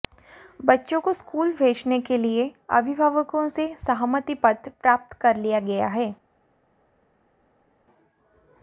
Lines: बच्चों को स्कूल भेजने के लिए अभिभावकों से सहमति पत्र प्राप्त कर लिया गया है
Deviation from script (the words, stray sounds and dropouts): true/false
false